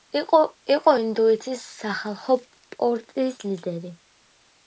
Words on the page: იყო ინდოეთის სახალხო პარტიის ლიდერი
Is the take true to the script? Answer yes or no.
yes